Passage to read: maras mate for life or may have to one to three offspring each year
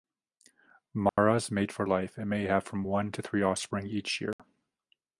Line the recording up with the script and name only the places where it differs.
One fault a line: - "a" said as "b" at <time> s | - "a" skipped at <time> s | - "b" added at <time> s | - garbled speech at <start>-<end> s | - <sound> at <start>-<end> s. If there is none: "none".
- dropout at 1.1-1.2 s
- "or" said as "and" at 2.2 s
- "to" said as "from" at 2.6 s
- dropout at 4.3-4.4 s